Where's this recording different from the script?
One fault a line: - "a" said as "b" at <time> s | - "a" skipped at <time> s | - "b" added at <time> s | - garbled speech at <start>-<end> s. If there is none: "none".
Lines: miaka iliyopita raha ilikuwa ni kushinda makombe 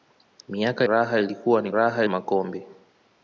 - "iliyopita" skipped at 0.9 s
- "kushinda" said as "raha" at 1.7 s